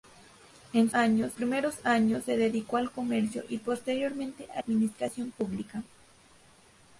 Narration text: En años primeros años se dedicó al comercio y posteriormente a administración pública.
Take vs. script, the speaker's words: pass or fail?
pass